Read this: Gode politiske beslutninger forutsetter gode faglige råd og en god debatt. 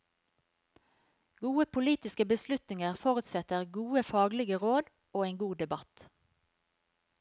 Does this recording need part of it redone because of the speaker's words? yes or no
no